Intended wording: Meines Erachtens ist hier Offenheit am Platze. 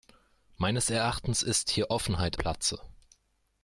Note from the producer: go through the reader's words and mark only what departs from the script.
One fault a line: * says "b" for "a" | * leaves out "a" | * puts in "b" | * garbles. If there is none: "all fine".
* leaves out "am"